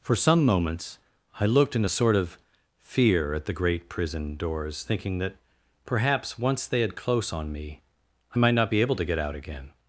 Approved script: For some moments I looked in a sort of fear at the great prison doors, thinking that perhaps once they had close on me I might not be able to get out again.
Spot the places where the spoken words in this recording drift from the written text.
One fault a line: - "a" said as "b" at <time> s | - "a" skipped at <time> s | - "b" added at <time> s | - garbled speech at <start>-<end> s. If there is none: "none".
none